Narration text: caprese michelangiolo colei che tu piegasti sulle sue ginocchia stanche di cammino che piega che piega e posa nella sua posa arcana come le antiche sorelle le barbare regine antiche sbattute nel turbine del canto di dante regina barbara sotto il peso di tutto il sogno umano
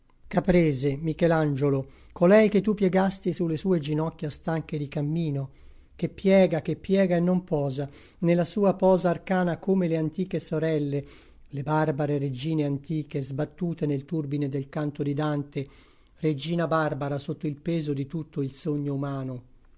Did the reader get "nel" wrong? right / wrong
right